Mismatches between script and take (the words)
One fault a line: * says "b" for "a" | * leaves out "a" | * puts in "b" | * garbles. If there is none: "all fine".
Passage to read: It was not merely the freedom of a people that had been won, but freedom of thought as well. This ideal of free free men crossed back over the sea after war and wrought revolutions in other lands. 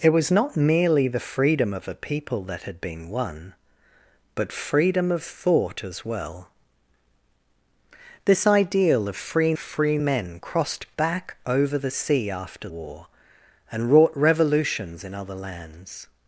all fine